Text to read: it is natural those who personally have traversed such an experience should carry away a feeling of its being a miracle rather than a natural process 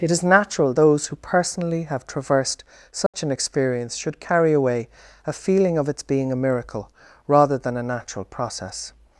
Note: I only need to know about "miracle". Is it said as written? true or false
true